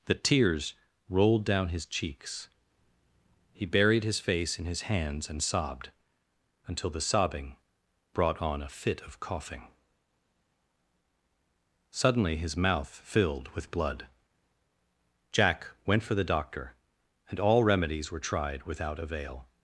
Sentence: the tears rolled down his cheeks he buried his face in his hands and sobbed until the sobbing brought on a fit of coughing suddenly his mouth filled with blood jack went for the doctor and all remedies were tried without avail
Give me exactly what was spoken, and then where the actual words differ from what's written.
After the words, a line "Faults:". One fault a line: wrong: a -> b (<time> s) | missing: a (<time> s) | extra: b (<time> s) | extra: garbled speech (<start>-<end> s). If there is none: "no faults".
the tears rolled down his cheeks he buried his face in his hands and sobbed until the sobbing brought on a fit of coughing suddenly his mouth filled with blood jack went for the doctor and all remedies were tried without avail
Faults:
no faults